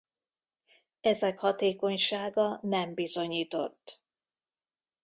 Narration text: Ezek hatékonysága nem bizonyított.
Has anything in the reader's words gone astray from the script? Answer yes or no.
no